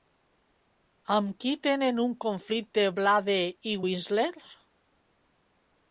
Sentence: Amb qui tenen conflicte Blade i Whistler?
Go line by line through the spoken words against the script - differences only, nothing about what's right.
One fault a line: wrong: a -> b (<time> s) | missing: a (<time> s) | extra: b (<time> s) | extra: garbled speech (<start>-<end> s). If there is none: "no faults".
extra: un (2.0 s)